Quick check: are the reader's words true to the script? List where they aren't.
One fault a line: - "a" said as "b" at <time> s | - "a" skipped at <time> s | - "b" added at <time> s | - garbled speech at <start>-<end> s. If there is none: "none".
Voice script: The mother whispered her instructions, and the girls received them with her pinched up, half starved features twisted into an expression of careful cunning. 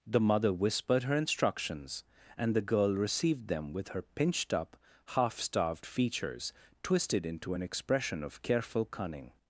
- "girls" said as "girl" at 2.6 s